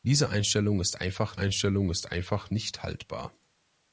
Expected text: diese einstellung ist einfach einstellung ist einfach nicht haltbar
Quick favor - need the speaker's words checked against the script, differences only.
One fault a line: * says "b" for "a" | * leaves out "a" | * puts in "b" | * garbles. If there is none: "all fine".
all fine